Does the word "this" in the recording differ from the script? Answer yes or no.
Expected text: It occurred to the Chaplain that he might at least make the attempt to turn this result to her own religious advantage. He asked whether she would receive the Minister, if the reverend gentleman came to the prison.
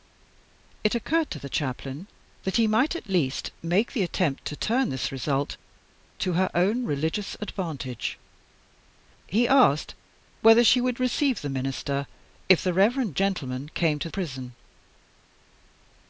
no